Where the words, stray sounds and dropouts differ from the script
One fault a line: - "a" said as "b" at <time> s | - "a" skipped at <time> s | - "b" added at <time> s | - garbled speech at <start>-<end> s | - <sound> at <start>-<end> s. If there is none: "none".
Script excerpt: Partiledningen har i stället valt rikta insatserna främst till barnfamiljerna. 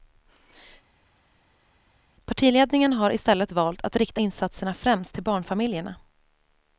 - "att" added at 3.8 s